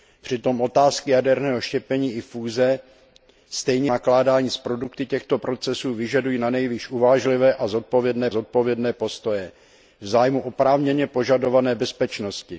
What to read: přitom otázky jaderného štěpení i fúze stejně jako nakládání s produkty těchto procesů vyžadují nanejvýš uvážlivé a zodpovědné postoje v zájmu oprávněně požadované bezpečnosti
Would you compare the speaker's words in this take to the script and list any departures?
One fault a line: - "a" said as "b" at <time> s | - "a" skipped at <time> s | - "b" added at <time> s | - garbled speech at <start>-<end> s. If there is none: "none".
- "jako" skipped at 3.9 s
- "zodpovědné" added at 8.3 s